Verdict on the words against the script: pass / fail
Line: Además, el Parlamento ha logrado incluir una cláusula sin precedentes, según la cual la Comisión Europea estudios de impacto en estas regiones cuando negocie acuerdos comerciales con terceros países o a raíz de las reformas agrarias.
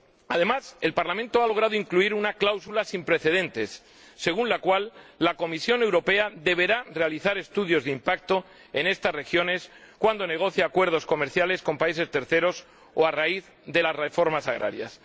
fail